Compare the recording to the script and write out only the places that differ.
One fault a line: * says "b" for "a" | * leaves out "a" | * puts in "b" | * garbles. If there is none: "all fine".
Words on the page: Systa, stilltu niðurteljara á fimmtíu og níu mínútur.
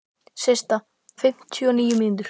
* leaves out "stilltu niðurteljara"